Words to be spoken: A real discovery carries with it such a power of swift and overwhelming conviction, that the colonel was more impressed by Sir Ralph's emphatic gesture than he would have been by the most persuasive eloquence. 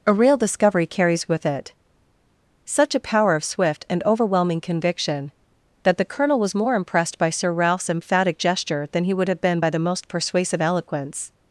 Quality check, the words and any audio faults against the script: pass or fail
pass